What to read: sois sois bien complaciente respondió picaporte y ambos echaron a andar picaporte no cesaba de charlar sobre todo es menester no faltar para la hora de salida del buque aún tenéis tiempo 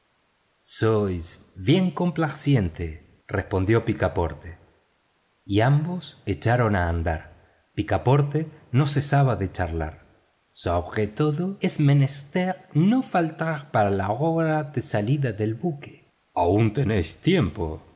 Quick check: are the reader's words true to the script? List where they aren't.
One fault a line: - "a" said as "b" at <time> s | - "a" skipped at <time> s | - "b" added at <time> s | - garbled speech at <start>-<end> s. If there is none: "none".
- "sois" skipped at 1.5 s